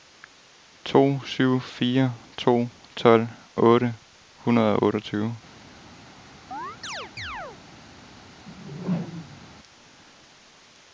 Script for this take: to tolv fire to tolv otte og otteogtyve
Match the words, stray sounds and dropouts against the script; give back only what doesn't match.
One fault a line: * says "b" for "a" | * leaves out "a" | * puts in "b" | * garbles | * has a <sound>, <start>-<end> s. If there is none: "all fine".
* says "syv" for "tolv"
* puts in "hundrede"
* has a chirp, 6.5-7.6 s
* has a whoosh, 8.5-9.5 s